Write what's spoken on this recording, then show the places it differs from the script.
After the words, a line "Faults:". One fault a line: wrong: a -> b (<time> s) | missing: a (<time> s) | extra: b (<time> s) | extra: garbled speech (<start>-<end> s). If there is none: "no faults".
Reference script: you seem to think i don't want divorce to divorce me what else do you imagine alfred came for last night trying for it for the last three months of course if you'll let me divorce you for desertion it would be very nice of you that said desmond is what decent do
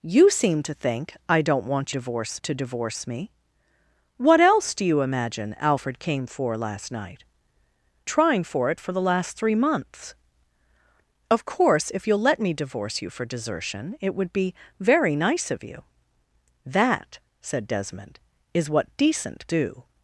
you seem to think i don't want divorce to divorce me what else do you imagine alfred came for last night trying for it for the last three months of course if you'll let me divorce you for desertion it would be very nice of you that said desmond is what decent do
Faults:
no faults